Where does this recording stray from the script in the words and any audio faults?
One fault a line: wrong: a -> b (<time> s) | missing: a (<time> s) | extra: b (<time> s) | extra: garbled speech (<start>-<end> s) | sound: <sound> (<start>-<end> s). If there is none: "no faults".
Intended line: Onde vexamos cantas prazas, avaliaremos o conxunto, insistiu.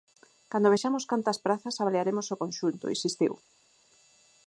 wrong: Onde -> Cando (0.5 s)